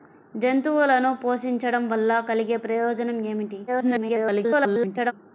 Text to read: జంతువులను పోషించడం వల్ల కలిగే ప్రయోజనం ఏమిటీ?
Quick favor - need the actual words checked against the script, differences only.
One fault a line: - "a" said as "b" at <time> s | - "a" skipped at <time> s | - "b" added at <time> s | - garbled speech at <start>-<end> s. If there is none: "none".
- garbled speech at 3.7-5.1 s